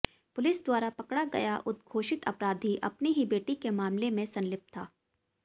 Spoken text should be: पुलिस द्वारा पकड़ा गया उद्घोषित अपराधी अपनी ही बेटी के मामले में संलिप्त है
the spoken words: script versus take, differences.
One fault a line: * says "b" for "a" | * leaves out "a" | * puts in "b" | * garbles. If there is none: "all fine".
* says "था" for "है"